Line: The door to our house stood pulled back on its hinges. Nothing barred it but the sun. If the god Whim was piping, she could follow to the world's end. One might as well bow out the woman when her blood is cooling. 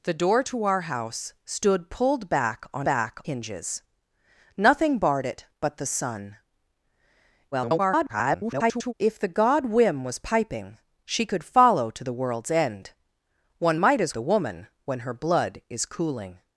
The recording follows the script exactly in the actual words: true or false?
false